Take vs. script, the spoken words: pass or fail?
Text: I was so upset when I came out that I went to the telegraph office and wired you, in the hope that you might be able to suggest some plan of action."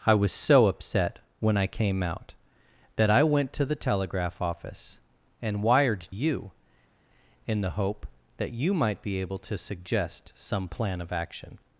pass